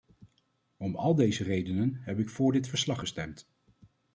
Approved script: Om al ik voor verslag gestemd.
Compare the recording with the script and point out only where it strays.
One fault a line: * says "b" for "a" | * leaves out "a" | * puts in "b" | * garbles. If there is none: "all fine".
* puts in "deze redenen heb"
* puts in "dit"